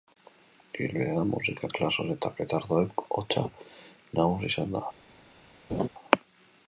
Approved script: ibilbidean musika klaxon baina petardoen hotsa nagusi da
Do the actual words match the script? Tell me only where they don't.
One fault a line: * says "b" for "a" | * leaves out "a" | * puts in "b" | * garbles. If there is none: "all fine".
* says "eta" for "baina"
* puts in "izan"